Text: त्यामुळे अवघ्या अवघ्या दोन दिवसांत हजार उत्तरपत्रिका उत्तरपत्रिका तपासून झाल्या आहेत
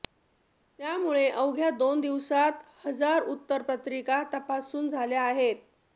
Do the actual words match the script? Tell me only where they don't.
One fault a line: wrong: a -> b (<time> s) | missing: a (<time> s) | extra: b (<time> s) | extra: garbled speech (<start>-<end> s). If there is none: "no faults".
missing: अवघ्या (1.7 s)
missing: उत्तरपत्रिका (4.2 s)